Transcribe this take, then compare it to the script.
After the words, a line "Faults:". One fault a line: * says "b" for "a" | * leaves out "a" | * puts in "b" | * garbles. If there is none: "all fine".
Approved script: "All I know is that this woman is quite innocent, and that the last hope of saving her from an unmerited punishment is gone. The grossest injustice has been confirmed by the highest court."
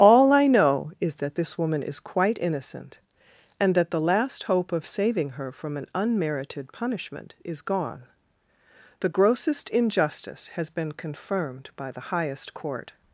"All I know is that this woman is quite innocent, and that the last hope of saving her from an unmerited punishment is gone. The grossest injustice has been confirmed by the highest court."
Faults:
all fine